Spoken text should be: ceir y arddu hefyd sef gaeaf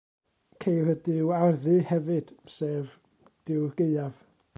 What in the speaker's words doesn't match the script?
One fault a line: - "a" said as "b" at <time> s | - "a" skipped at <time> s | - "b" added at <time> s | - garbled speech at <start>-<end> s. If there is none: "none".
- "duw" added at 1.1 s
- "duw'r" added at 3.5 s